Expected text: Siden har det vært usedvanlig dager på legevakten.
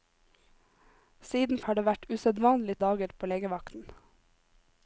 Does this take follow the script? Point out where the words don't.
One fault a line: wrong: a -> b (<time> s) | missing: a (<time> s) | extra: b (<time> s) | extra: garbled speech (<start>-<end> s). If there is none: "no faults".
no faults